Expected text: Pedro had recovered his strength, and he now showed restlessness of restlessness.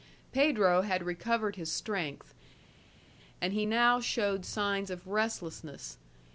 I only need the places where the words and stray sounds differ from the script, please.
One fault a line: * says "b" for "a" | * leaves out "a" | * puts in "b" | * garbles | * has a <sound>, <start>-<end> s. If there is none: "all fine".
* says "signs" for "restlessness"